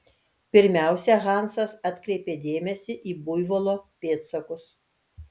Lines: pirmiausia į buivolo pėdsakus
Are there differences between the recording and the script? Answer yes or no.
yes